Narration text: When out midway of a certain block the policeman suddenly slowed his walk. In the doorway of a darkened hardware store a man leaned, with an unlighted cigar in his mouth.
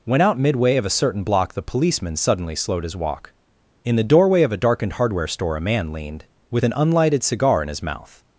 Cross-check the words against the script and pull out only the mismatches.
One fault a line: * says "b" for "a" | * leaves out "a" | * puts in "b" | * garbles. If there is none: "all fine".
all fine